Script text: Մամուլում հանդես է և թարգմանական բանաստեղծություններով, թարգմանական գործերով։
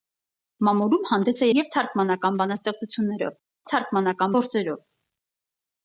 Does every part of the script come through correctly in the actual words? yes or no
yes